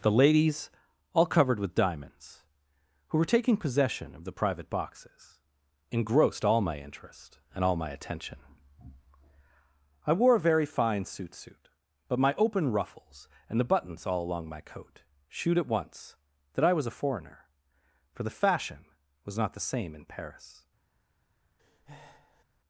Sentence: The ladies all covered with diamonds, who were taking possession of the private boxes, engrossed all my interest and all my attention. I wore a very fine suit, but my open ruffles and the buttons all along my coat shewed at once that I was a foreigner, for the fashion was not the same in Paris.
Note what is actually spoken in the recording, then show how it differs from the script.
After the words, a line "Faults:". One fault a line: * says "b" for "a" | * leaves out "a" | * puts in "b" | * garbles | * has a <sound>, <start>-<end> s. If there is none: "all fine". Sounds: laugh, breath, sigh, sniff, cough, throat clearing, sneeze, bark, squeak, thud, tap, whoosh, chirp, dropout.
The ladies all covered with diamonds, who were taking possession of the private boxes, engrossed all my interest and all my attention. I wore a very fine suit suit, but my open ruffles and the buttons all along my coat shewed at once that I was a foreigner, for the fashion was not the same in Paris.
Faults:
* puts in "suit"
* has a breath, 21.6-22.4 s